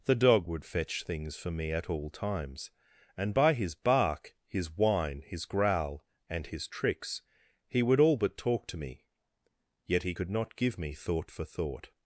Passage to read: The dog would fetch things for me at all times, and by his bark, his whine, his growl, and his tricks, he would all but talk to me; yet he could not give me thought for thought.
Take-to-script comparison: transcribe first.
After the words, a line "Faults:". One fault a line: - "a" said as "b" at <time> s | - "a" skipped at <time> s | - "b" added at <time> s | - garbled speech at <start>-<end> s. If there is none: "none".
The dog would fetch things for me at all times, and by his bark, his whine, his growl, and his tricks, he would all but talk to me; yet he could not give me thought for thought.
Faults:
none